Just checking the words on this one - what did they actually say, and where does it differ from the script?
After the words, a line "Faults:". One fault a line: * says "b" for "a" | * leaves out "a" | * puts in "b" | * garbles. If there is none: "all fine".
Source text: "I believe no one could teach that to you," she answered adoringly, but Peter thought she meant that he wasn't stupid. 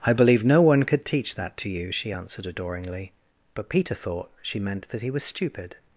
"I believe no one could teach that to you," she answered adoringly, but Peter thought she meant that he was stupid.
Faults:
* says "was" for "wasn't"